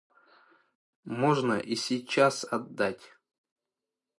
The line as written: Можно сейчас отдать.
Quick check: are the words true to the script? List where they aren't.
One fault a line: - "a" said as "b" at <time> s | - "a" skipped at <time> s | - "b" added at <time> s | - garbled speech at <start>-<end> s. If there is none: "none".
- "и" added at 1.6 s